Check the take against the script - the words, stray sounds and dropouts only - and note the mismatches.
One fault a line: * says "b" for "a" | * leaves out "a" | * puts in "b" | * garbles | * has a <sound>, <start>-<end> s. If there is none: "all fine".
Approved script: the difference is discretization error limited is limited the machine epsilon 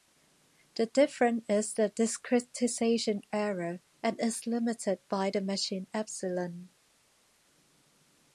* puts in "the"
* says "and" for "limited"
* puts in "by"